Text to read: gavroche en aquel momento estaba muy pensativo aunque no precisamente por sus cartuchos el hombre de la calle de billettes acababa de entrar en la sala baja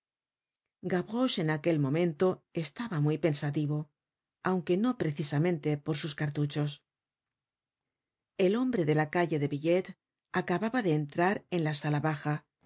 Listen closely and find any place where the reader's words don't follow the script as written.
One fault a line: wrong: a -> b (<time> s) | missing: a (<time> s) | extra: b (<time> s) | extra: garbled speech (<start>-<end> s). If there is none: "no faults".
no faults